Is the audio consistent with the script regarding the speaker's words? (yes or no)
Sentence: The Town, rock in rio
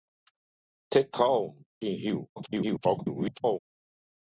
no